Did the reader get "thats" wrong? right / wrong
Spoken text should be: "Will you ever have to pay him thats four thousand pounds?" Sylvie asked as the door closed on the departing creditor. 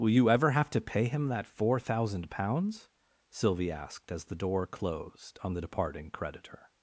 wrong